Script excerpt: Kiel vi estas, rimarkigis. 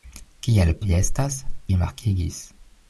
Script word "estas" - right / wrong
right